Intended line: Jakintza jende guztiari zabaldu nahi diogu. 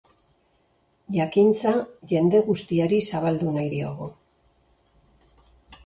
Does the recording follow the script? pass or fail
pass